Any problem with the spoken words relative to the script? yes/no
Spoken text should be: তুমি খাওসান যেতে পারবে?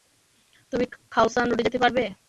yes